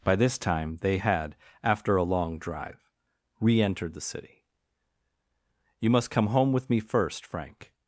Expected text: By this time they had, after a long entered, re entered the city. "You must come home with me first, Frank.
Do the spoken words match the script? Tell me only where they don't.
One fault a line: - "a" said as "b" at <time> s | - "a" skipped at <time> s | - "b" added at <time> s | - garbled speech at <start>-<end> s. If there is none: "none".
- "entered" said as "drive" at 2.4 s